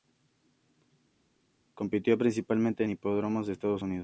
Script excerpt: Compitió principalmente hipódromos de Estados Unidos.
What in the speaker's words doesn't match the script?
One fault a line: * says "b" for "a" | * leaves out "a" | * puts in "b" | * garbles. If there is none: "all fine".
all fine